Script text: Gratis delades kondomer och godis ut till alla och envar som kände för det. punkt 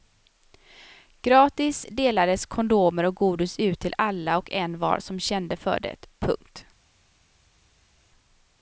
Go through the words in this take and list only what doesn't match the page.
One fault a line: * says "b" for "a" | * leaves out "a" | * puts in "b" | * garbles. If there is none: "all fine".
all fine